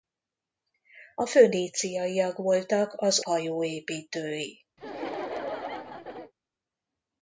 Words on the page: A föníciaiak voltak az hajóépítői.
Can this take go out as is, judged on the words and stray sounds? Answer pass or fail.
fail